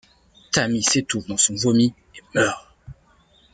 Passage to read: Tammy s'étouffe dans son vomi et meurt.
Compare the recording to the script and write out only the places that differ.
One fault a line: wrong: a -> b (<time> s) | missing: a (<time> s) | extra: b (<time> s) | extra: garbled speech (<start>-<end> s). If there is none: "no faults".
no faults